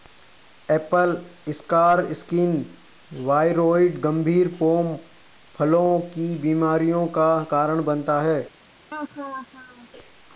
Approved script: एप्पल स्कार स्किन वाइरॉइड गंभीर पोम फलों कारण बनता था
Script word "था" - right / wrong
wrong